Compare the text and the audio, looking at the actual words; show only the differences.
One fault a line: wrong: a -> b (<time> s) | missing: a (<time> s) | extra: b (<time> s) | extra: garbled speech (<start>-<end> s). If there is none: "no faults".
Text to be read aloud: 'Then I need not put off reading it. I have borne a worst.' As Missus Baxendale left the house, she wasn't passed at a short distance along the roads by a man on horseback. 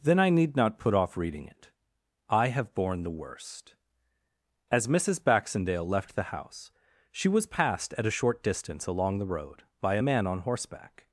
wrong: a -> the (3.0 s)
wrong: wasn't -> was (7.3 s)
wrong: roads -> road (9.2 s)